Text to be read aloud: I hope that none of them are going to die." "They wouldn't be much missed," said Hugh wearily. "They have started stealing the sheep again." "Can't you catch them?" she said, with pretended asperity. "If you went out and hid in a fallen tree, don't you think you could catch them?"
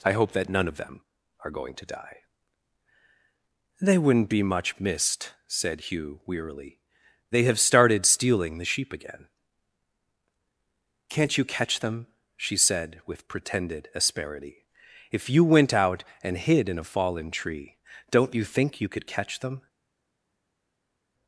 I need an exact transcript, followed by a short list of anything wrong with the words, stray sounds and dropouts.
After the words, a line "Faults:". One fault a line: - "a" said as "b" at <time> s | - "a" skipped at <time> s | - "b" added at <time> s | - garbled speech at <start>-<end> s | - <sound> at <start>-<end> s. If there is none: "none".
I hope that none of them are going to die." "They wouldn't be much missed," said Hugh wearily. "They have started stealing the sheep again." "Can't you catch them?" she said, with pretended asperity. "If you went out and hid in a fallen tree, don't you think you could catch them?"
Faults:
none